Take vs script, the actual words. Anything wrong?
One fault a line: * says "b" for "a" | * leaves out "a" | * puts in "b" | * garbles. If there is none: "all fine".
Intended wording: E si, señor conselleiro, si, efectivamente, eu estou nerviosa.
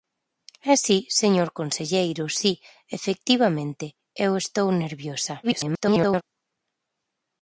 * garbles